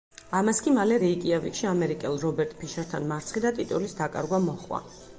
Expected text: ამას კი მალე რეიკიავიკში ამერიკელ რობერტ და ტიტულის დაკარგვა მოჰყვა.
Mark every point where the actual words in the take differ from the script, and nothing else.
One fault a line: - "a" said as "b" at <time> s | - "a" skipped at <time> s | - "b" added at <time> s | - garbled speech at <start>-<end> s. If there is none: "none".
- "ფიშერთან მარცხი" added at 2.6 s